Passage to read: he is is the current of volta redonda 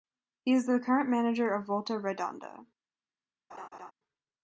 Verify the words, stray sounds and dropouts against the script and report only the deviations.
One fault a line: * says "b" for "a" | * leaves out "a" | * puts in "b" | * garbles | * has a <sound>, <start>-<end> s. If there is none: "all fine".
* leaves out "is"
* puts in "manager"
* has a laugh, 3.5-3.9 s